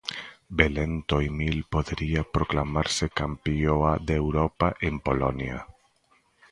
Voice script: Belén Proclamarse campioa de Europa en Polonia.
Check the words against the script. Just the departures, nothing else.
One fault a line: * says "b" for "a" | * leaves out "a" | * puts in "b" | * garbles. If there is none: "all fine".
* puts in "Toimil podería"